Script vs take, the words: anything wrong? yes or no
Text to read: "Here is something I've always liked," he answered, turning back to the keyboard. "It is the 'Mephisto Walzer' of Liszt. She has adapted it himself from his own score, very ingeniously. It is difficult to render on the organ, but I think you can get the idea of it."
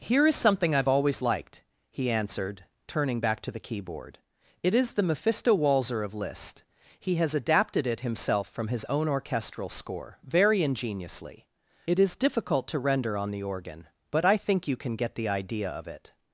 yes